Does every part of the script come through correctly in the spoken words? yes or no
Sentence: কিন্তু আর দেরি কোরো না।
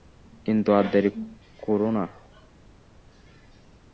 yes